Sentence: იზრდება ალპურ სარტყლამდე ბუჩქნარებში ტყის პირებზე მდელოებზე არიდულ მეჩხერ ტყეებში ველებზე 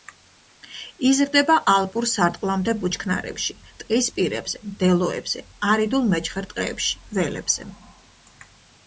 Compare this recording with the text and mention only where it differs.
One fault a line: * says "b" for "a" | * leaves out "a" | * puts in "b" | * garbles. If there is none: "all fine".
all fine